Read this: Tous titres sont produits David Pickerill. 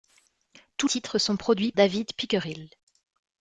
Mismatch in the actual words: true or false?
false